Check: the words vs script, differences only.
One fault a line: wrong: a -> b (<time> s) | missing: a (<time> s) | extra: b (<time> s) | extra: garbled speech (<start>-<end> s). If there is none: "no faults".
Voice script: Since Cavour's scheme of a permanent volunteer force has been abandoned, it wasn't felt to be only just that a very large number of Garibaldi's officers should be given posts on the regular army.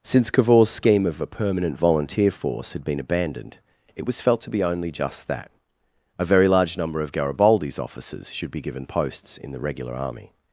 wrong: has -> had (2.7 s)
wrong: wasn't -> was (4.0 s)
wrong: on -> in (9.4 s)